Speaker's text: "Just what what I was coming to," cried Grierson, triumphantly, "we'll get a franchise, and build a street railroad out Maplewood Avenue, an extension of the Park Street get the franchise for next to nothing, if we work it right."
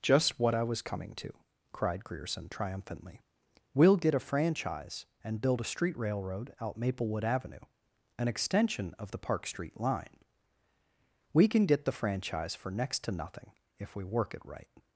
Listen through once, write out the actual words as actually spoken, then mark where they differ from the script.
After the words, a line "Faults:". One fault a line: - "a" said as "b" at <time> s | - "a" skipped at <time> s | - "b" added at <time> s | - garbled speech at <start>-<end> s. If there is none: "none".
"Just what I was coming to," cried Grierson, triumphantly, "we'll get a franchise, and build a street railroad out Maplewood Avenue, an extension of the Park Street line. We can get the franchise for next to nothing, if we work it right."
Faults:
- "what" skipped at 0.6 s
- "line We can" added at 9.8 s